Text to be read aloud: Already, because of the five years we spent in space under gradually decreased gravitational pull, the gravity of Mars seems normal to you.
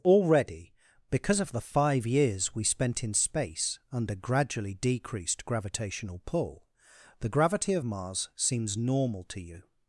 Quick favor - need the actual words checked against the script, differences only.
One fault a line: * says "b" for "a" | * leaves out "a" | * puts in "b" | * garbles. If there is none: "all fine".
all fine